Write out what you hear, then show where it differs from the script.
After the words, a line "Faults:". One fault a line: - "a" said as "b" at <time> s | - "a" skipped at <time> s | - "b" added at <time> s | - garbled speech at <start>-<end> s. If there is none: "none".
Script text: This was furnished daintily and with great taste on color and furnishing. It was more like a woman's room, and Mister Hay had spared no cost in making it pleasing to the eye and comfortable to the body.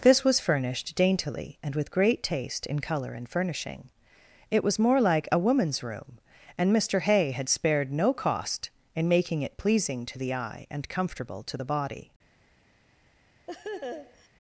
This was furnished daintily and with great taste in color and furnishing. It was more like a woman's room, and Mister Hay had spared no cost in making it pleasing to the eye and comfortable to the body.
Faults:
- "on" said as "in" at 2.6 s